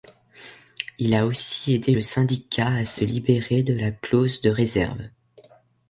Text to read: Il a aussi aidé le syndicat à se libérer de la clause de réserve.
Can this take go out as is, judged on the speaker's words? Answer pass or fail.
pass